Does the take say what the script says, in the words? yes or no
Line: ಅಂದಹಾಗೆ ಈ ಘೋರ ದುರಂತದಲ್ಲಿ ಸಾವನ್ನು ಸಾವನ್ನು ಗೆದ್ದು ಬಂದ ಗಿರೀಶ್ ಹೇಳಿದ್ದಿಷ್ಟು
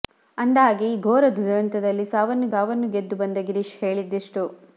yes